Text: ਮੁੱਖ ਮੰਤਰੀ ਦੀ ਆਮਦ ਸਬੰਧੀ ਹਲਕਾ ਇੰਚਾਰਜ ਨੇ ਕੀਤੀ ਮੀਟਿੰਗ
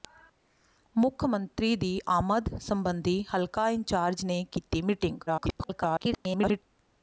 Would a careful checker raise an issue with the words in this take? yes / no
yes